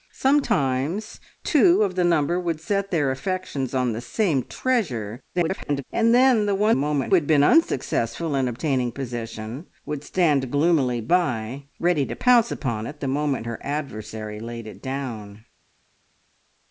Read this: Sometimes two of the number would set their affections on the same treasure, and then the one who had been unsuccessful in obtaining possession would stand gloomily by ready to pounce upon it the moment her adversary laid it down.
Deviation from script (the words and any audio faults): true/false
true